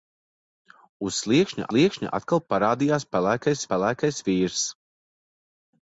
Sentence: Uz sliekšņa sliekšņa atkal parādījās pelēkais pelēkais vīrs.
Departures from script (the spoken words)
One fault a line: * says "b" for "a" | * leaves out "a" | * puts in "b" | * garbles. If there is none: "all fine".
all fine